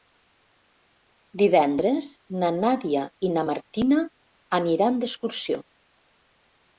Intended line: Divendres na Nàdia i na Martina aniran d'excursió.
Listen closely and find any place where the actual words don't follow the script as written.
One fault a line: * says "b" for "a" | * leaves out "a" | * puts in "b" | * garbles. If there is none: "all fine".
all fine